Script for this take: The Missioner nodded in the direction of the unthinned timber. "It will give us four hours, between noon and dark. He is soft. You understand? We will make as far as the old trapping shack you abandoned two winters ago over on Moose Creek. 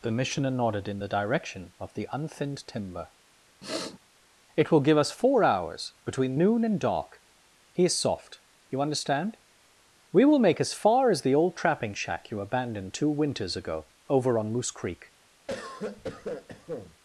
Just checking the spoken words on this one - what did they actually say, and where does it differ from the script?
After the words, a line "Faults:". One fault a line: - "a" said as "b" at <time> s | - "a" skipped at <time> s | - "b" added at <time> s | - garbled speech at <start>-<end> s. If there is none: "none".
The Missioner nodded in the direction of the unthinned timber. "It will give us four hours, between noon and dark. He is soft. You understand? We will make as far as the old trapping shack you abandoned two winters ago over on Moose Creek.
Faults:
none